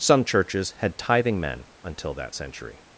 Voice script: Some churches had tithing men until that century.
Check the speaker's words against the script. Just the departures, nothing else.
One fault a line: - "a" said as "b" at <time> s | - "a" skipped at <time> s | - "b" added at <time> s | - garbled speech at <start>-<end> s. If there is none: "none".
none